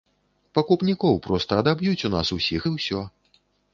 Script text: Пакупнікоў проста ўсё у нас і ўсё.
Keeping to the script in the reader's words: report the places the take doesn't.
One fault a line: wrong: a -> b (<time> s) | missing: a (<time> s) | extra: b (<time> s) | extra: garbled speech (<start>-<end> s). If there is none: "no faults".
wrong: ўсё -> адаб'юць (1.6 s)
extra: усіх (2.4 s)